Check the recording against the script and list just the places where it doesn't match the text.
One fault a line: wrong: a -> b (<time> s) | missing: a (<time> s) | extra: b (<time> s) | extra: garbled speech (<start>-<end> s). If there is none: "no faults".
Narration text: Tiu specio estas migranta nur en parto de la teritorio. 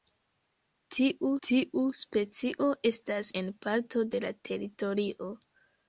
extra: tiu (1.5 s)
missing: migranta nur (3.3 s)